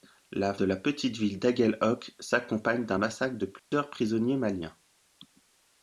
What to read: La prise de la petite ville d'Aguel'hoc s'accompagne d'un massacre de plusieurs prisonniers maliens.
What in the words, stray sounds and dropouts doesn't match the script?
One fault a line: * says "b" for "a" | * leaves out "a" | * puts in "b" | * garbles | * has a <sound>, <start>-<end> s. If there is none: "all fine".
* leaves out "prise"
* has a dropout, 3.6-3.7 s